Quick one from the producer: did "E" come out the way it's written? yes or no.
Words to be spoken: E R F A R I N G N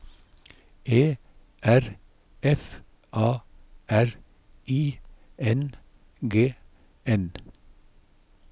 yes